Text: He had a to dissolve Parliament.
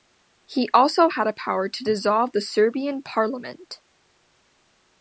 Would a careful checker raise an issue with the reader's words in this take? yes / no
yes